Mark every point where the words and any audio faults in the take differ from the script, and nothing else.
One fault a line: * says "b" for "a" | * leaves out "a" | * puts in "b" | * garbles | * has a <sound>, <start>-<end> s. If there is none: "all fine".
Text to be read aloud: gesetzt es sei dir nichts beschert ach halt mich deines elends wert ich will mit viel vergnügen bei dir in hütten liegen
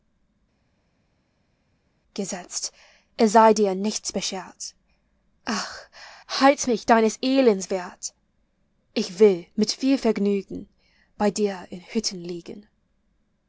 all fine